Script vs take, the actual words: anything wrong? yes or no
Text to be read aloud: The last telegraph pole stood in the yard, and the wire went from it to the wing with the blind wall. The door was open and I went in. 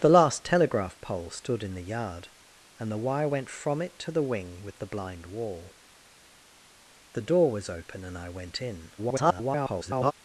yes